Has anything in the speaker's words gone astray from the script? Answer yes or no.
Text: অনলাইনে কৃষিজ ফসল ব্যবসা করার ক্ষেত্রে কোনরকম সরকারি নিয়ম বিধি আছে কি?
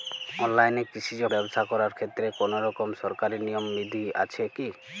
yes